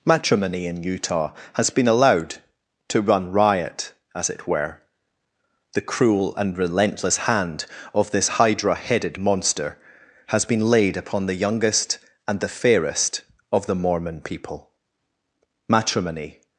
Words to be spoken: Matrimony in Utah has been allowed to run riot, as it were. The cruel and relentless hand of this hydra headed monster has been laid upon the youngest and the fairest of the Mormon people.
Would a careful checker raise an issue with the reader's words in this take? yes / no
yes